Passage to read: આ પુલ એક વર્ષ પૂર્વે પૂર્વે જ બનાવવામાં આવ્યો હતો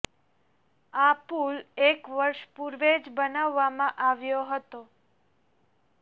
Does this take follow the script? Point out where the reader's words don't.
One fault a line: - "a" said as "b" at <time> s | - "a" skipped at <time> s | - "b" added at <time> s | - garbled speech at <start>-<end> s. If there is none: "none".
- "પૂર્વે" skipped at 2.9 s